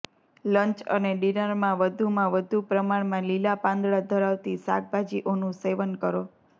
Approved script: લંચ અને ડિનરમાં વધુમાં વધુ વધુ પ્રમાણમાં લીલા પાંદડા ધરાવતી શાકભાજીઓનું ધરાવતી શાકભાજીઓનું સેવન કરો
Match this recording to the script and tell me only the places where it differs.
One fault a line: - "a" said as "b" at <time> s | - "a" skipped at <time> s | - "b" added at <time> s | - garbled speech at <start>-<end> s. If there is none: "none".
- "વધુ" skipped at 2.6 s
- "ધરાવતી શાકભાજીઓનું" skipped at 5.6 s